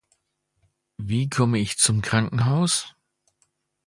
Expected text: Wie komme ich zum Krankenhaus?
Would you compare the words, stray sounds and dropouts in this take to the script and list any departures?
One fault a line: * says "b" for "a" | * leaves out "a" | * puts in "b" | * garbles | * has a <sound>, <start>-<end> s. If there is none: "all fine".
all fine